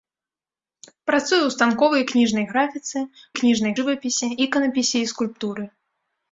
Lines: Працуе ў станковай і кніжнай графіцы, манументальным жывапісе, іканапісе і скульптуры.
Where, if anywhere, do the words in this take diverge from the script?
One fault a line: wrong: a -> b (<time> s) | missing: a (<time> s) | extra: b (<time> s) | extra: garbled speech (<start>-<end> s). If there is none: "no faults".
wrong: манументальным -> кніжнай (3.4 s)